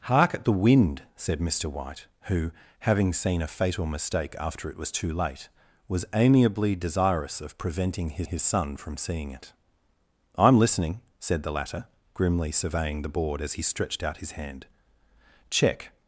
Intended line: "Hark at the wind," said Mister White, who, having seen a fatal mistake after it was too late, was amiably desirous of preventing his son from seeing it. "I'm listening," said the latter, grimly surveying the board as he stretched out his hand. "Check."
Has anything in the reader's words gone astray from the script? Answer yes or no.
yes